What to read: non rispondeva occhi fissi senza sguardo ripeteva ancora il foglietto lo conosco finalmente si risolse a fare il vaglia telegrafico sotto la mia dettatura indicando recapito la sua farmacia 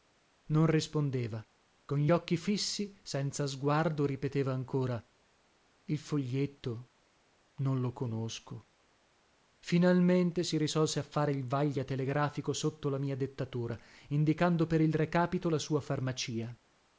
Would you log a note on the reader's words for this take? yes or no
yes